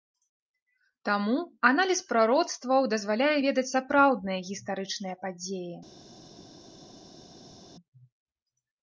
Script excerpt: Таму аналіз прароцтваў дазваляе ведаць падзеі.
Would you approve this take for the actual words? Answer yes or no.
no